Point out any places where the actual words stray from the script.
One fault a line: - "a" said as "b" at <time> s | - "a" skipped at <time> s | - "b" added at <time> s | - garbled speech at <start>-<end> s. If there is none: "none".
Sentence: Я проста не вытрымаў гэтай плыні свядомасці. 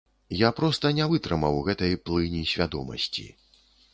none